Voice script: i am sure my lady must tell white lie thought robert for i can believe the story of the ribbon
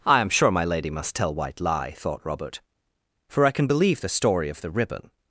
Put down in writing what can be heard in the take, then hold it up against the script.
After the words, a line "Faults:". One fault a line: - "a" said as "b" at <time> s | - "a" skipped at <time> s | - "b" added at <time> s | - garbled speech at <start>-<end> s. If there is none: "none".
i am sure my lady must tell white lie thought robert for i can believe the story of the ribbon
Faults:
none